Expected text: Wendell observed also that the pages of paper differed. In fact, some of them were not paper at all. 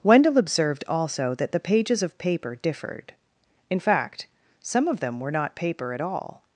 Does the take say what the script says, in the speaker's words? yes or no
yes